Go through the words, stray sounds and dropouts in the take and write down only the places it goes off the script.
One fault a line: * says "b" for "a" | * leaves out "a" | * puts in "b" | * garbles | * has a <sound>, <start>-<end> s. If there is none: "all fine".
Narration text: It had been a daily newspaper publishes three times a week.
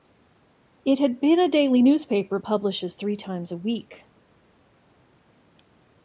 all fine